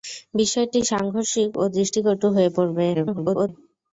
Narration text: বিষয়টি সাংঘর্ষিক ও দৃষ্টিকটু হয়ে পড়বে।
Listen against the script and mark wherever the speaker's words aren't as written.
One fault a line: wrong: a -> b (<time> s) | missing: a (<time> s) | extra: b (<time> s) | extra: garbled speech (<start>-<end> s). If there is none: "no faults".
extra: garbled speech (2.9-3.5 s)